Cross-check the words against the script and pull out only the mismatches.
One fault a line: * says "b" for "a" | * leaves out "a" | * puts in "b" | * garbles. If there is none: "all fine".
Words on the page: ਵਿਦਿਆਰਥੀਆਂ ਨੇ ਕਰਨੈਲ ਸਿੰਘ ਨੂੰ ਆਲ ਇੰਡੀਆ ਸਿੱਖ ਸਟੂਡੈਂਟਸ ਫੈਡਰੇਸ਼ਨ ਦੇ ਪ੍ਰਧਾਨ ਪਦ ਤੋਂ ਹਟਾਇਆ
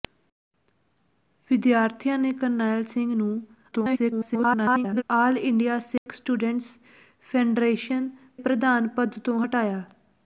* garbles
* leaves out "ਦੇ"